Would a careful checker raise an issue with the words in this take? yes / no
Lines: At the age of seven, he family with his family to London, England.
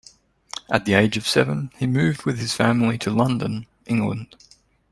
yes